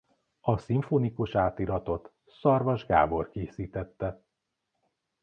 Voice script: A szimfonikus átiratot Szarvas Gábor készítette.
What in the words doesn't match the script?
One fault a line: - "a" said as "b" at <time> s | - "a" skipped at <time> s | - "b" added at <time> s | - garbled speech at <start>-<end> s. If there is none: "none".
none